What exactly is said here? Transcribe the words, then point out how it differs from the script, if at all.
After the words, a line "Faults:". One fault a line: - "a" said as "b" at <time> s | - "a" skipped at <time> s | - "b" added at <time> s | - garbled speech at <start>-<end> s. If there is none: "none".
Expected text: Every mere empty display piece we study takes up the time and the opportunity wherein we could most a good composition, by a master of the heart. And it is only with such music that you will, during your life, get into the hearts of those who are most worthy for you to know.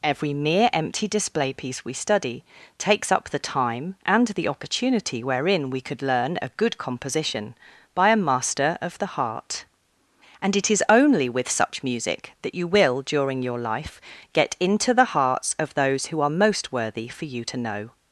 Every mere empty display piece we study takes up the time and the opportunity wherein we could learn a good composition, by a master of the heart. And it is only with such music that you will, during your life, get into the hearts of those who are most worthy for you to know.
Faults:
- "most" said as "learn" at 6.0 s